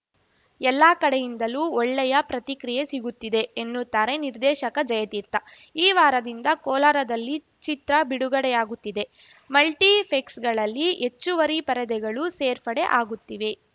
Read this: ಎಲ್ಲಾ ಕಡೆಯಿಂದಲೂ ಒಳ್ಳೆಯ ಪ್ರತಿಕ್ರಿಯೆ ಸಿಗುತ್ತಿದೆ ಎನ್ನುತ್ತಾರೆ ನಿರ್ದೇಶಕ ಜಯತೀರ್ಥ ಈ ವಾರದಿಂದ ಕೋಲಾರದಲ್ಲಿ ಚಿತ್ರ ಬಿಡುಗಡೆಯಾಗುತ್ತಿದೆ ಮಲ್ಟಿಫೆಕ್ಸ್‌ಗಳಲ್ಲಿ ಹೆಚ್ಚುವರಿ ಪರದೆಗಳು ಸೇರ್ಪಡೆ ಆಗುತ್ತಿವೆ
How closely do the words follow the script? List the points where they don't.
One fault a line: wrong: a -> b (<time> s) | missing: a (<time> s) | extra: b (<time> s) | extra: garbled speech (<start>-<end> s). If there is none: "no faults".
no faults